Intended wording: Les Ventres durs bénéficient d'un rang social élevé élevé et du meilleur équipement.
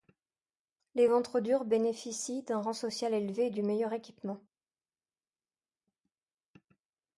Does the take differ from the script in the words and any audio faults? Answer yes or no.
yes